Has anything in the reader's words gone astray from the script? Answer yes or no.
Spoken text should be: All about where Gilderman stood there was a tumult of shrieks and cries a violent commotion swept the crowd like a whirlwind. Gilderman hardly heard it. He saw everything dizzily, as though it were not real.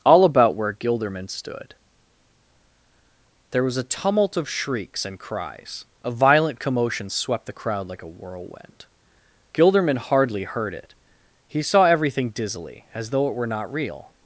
no